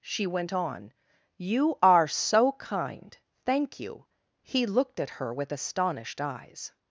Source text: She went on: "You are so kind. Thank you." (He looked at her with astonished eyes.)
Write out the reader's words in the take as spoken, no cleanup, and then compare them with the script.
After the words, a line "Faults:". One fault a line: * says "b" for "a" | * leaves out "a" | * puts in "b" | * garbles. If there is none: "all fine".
She went on: "You are so kind. Thank you." (He looked at her with astonished eyes.)
Faults:
all fine